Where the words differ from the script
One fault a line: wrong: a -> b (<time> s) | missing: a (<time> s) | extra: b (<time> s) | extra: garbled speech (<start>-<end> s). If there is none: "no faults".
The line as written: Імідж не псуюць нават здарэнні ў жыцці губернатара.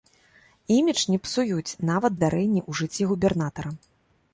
no faults